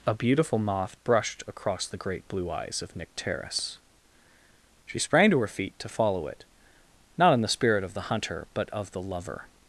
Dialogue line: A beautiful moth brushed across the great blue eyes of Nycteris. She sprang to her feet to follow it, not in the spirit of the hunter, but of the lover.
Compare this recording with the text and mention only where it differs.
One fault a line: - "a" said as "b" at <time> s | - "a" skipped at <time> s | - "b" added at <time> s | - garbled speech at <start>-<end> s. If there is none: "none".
none